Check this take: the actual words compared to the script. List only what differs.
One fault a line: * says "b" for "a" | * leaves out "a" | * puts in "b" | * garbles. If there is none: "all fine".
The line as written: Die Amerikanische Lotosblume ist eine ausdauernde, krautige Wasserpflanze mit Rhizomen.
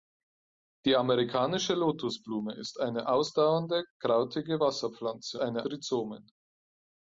* says "eine" for "mit"